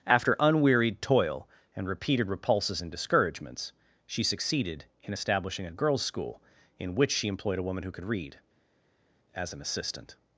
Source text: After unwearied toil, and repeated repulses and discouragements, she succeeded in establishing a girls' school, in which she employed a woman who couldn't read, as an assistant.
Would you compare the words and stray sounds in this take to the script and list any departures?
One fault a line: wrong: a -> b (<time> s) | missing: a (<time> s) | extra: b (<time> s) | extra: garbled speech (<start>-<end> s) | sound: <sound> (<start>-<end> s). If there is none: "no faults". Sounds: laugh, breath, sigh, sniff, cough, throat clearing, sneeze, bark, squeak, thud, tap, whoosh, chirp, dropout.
wrong: couldn't -> could (7.9 s)